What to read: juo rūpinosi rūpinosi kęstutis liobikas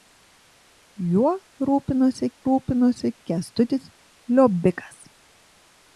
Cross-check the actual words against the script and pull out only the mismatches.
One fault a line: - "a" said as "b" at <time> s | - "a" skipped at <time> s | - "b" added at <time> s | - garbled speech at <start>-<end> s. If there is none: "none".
none